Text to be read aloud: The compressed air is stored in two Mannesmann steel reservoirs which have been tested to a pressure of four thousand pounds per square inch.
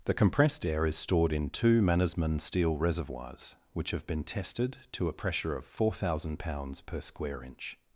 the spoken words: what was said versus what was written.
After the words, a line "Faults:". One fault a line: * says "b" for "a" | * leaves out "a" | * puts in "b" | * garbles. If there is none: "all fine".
The compressed air is stored in two Mannesmann steel reservoirs which have been tested to a pressure of four thousand pounds per square inch.
Faults:
all fine